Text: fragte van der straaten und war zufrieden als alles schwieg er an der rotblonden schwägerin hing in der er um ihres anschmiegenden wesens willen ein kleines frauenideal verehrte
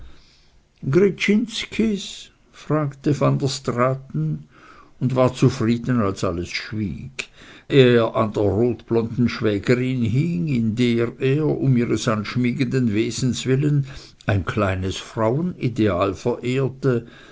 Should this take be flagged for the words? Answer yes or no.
no